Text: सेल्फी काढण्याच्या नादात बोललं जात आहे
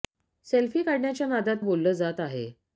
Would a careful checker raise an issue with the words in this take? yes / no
no